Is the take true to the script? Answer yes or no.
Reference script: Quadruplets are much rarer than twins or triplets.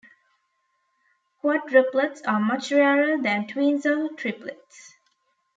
yes